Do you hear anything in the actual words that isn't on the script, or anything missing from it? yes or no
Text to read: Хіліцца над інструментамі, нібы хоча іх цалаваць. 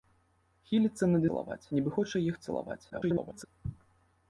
yes